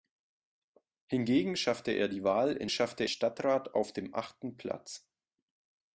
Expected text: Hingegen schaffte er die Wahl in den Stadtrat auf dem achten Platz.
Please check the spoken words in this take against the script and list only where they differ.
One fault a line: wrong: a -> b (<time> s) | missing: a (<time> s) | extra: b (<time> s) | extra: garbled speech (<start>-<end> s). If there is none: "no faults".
wrong: den -> schaffte (2.7 s)